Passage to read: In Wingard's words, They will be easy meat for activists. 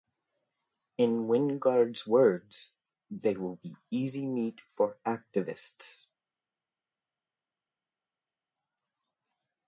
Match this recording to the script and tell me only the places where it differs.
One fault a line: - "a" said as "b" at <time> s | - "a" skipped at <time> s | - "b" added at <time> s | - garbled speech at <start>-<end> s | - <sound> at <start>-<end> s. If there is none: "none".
none